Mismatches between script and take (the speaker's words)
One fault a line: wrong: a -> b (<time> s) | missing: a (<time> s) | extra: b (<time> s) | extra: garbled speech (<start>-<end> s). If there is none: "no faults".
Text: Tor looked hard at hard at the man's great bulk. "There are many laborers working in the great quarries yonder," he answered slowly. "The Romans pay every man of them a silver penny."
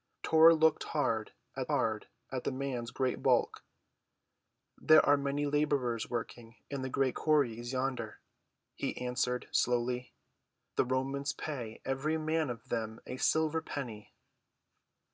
no faults